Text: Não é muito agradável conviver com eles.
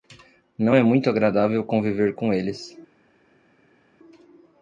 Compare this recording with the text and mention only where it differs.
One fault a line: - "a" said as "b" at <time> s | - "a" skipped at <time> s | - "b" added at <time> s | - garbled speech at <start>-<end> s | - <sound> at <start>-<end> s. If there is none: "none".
none